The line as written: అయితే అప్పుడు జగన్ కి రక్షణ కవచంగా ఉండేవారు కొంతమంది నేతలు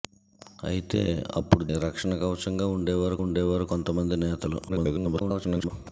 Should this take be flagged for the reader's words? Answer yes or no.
yes